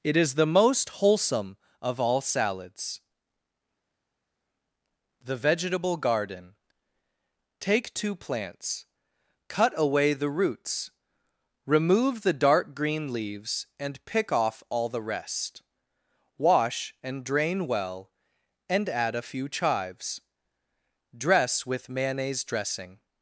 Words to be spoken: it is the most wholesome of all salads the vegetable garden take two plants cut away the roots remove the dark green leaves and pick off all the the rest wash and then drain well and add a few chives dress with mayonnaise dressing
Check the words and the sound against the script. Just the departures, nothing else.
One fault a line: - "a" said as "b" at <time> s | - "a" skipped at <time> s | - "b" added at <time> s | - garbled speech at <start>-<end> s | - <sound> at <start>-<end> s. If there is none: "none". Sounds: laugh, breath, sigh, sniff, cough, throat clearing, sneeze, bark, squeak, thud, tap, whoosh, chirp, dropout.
- "the" skipped at 15.0 s
- "then" skipped at 17.2 s